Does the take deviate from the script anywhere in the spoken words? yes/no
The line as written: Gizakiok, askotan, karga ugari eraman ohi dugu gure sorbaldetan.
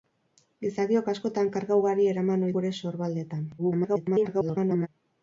yes